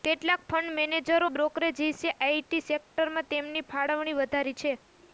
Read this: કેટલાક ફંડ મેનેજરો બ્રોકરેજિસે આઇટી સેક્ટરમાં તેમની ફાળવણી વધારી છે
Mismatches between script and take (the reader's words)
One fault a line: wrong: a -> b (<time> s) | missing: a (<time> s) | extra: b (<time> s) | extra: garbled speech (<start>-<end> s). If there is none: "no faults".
no faults